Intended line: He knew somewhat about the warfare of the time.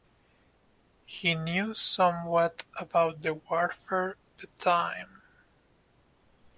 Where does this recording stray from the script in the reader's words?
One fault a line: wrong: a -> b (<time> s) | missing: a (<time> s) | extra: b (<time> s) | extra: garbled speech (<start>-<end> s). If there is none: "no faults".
missing: of (4.2 s)